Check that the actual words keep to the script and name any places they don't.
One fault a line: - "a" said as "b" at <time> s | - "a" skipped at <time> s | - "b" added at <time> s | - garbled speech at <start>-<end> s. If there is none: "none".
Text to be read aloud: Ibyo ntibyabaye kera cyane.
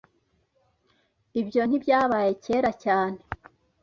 none